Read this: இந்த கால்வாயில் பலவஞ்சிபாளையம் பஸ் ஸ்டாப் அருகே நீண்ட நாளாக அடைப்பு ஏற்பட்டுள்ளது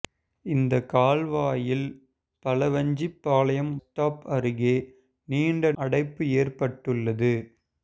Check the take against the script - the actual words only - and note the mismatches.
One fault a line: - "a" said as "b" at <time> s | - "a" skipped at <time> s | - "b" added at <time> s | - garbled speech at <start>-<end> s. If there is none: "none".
- "பஸ்" skipped at 3.7 s
- "நாளாக" skipped at 5.7 s